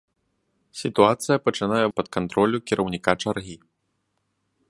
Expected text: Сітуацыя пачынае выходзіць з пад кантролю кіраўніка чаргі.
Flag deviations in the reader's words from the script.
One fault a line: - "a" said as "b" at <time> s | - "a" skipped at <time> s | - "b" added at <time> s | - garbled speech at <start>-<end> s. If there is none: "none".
- "выходзіць" skipped at 1.8 s